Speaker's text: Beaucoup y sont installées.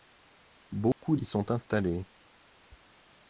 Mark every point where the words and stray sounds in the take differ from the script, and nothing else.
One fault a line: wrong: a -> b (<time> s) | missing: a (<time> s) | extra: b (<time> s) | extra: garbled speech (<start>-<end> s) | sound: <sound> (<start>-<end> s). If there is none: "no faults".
sound: dropout (0.9-1.0 s)